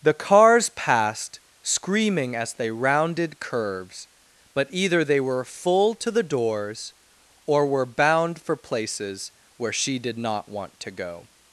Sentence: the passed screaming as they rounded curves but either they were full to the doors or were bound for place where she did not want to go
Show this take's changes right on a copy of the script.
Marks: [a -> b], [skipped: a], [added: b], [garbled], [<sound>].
the [added: cars] passed screaming as they rounded curves but either they were full to the doors or were bound for [place -> places] where she did not want to go